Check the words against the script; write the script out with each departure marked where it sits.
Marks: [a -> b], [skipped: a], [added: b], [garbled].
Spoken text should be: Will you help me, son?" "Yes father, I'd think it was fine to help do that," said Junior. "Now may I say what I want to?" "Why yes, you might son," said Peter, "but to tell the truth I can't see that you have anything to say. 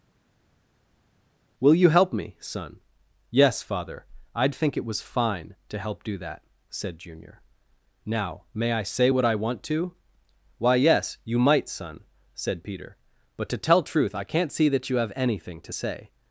Will you help me, son?" "Yes father, I'd think it was fine to help do that," said Junior. "Now may I say what I want to?" "Why yes, you might son," said Peter, "but to tell [skipped: the] truth I can't see that you have anything to say.